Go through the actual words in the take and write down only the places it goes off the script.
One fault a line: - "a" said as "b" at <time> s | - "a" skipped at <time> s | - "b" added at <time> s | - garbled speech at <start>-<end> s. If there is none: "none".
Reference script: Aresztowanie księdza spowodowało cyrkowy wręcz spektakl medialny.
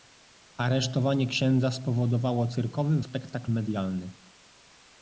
- "wręcz" skipped at 3.0 s